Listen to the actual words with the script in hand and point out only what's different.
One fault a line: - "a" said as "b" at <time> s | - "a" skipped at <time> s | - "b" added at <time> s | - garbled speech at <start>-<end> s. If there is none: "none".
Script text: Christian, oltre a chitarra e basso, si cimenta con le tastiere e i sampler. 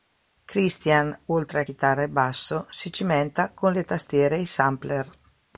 none